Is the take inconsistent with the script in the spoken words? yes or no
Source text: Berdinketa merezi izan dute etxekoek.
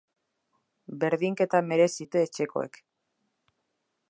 yes